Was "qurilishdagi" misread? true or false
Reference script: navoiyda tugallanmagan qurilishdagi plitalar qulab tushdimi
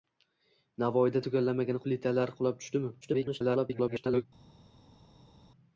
true